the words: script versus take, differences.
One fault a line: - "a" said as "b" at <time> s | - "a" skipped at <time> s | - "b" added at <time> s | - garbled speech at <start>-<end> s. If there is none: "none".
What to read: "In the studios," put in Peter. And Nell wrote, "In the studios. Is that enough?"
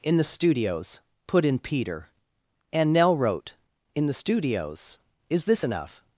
- "that" said as "this" at 5.4 s